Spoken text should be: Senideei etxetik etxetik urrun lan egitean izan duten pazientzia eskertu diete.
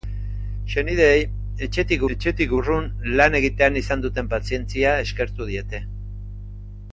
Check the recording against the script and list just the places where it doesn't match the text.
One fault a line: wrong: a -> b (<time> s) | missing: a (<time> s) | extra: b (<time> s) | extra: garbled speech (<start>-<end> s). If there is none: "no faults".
no faults